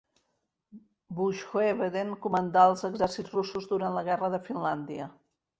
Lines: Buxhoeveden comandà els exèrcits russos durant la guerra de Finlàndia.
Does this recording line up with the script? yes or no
yes